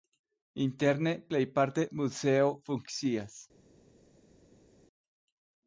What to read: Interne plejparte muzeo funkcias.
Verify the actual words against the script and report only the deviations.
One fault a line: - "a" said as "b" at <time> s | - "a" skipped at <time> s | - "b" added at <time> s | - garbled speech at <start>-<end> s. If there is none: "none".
none